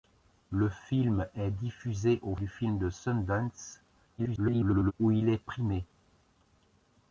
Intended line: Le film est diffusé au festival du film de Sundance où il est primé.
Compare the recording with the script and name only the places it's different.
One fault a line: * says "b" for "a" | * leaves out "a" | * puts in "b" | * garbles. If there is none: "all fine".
* leaves out "festival"
* garbles